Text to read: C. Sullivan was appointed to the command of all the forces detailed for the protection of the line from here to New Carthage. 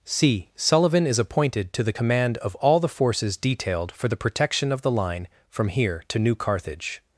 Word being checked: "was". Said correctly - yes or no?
no